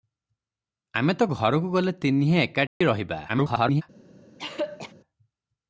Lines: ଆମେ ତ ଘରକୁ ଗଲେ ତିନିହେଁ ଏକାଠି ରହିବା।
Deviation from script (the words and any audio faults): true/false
true